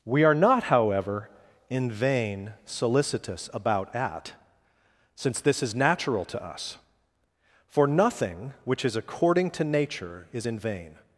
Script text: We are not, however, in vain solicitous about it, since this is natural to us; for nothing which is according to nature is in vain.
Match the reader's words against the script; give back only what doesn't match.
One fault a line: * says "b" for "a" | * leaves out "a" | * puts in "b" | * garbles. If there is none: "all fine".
* says "at" for "it"